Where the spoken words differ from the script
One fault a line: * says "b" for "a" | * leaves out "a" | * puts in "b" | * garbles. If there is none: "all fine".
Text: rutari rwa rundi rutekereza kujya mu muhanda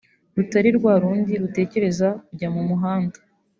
all fine